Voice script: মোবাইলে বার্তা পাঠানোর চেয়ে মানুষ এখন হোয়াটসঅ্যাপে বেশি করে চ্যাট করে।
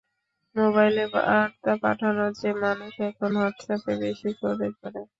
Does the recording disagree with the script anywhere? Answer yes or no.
yes